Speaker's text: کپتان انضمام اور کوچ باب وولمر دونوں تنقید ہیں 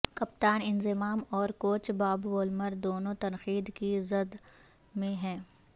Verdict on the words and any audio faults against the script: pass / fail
fail